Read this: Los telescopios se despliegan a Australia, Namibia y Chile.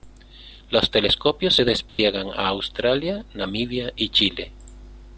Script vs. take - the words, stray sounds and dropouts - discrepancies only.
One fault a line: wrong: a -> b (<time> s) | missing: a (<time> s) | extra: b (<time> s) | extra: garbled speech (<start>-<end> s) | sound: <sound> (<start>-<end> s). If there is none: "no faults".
sound: dropout (1.9-2.0 s)